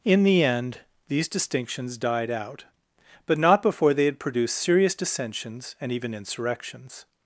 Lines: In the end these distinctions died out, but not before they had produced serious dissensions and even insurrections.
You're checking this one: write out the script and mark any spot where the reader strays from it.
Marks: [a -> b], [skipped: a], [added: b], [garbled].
In the end these distinctions died out, but not before they had produced serious dissensions and even insurrections.